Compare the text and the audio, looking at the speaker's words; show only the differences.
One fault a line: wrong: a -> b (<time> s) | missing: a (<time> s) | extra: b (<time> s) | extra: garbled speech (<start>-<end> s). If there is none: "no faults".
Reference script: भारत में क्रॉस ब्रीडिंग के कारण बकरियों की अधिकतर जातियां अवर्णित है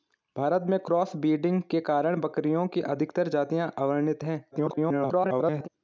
extra: garbled speech (4.5-5.7 s)